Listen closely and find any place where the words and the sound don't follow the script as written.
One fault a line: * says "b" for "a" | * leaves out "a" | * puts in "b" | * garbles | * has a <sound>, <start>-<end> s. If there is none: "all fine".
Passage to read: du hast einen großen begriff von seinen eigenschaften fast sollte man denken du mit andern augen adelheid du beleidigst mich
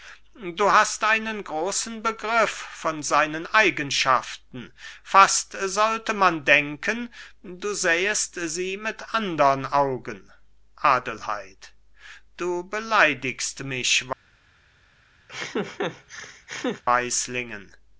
* puts in "sähest sie"
* has a laugh, 15.3-16.8 s